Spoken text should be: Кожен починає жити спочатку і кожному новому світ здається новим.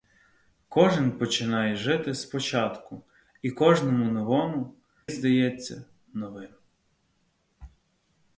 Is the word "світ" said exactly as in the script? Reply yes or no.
no